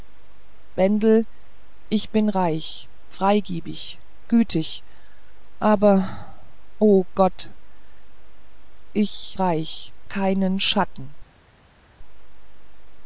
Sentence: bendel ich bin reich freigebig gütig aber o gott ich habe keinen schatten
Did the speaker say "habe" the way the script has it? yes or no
no